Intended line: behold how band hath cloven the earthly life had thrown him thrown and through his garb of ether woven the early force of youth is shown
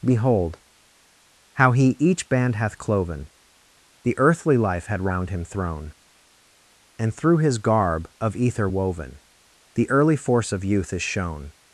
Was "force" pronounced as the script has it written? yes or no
yes